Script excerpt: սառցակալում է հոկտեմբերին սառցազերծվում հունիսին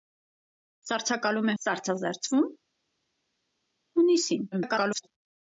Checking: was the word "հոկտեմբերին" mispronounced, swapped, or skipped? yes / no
yes